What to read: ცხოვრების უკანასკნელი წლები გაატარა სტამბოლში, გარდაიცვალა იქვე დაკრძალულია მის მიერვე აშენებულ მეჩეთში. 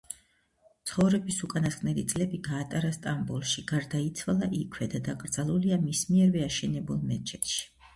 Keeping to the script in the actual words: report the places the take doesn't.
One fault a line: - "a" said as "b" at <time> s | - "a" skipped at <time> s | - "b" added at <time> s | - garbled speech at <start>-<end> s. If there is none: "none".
- "და" added at 5.0 s